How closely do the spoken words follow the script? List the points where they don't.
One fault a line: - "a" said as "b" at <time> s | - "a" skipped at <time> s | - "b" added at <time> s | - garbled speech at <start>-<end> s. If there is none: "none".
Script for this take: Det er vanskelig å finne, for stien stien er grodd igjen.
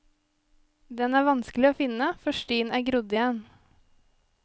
- "Det" said as "Den" at 1.0 s
- "stien" skipped at 2.7 s